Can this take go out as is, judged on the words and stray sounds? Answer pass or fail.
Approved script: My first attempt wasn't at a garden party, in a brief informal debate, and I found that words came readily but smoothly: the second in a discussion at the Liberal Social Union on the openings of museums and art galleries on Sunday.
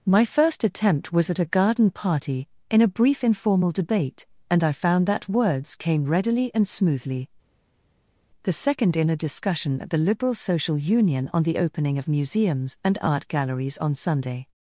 fail